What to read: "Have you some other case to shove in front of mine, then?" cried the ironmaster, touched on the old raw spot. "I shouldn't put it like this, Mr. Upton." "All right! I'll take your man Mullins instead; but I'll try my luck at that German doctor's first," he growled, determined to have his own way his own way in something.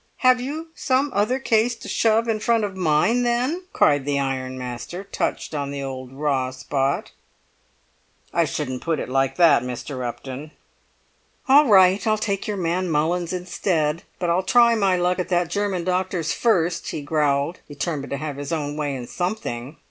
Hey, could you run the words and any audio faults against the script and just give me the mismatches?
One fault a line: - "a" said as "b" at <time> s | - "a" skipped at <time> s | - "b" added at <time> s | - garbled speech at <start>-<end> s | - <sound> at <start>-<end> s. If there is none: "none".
- "this" said as "that" at 9.4 s
- "his own way" skipped at 19.0 s